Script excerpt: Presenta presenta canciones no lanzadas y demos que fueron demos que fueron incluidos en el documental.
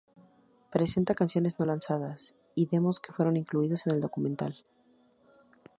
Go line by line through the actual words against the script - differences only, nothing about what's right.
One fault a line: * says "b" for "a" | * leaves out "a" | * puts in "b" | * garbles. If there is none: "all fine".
* leaves out "presenta"
* leaves out "demos que fueron"